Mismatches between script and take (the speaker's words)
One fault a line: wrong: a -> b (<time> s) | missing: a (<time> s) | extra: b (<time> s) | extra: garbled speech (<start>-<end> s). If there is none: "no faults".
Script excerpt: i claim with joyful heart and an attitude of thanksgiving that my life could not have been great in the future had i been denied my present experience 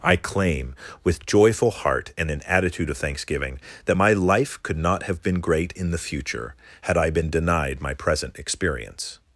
no faults